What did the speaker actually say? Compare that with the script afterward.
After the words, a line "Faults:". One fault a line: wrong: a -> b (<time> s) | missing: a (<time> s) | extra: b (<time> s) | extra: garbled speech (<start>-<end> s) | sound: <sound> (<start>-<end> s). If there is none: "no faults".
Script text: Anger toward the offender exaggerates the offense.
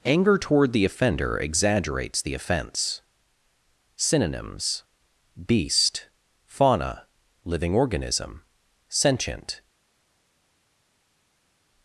Anger toward the offender exaggerates the offense. Synonyms: beast, fauna, living organism, sentient
Faults:
extra: Synonyms beast fauna living organism sentient (4.0 s)